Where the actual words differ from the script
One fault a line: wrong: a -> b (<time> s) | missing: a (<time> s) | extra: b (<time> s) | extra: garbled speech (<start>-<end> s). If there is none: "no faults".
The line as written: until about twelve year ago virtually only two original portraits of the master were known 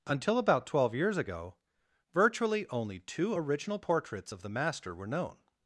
wrong: year -> years (0.9 s)